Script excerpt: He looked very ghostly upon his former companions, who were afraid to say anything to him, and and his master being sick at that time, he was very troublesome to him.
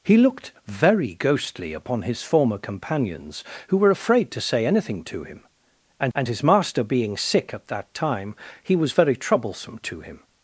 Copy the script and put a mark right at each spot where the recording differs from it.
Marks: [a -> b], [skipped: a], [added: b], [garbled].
He looked very ghostly upon his former companions, who were afraid to say anything to him, and and his master being sick at that time, he was very troublesome to him.